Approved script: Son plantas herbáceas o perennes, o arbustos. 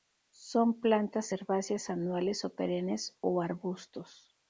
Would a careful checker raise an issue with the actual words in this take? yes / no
yes